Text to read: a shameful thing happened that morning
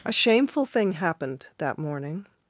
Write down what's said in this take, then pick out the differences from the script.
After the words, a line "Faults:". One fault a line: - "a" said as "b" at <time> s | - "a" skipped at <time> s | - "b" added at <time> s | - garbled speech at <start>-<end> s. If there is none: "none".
a shameful thing happened that morning
Faults:
none